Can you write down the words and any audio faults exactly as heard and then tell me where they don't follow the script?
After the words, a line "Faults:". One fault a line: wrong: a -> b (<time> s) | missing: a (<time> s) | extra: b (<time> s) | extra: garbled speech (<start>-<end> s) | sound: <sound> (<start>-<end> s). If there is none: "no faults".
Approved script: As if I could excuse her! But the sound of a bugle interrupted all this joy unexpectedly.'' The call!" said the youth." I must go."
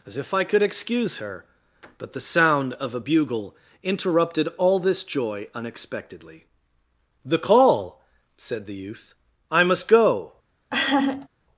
As if I could excuse her! But the sound of a bugle interrupted all this joy unexpectedly.'' The call!" said the youth." I must go."
Faults:
sound: laugh (10.7-11.3 s)